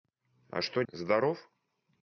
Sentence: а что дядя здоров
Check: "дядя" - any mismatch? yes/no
yes